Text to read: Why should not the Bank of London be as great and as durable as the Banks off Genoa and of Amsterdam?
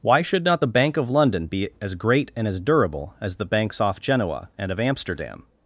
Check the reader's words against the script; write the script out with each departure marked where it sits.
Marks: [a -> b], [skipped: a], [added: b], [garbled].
Why should not the Bank of London be as great and as durable as the Banks off Genoa and of Amsterdam?